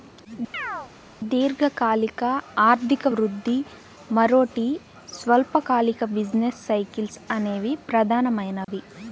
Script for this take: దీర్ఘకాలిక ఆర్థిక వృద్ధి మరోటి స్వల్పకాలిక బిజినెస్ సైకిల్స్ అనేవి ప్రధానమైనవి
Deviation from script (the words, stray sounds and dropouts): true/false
true